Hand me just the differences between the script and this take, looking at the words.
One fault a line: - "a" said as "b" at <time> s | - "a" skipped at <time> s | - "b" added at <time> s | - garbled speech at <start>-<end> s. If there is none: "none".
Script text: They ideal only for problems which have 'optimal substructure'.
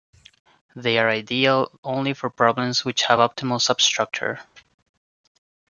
- "are" added at 1.0 s